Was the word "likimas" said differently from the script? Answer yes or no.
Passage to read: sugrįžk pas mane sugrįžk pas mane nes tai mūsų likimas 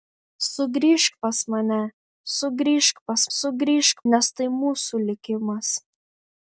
no